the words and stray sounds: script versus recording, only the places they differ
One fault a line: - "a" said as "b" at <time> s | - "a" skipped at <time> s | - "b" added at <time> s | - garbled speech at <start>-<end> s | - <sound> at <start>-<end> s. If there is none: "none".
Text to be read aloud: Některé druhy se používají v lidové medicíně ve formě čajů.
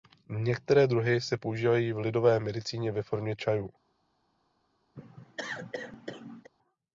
- cough at 5.0-6.5 s